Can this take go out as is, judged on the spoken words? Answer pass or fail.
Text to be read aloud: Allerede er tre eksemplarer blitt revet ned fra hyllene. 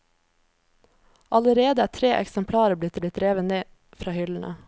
fail